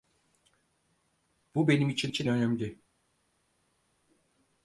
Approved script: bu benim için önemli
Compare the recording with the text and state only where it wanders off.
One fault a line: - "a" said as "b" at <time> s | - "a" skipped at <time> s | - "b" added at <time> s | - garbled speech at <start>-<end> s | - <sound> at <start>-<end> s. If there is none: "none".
- "için" added at 2.1 s